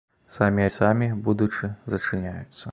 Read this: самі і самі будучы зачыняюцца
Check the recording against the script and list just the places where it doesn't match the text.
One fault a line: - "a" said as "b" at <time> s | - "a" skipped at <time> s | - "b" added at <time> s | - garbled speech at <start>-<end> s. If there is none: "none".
none